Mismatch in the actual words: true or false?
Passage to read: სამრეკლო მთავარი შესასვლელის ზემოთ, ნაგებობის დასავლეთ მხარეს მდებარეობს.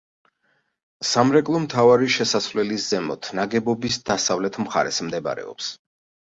false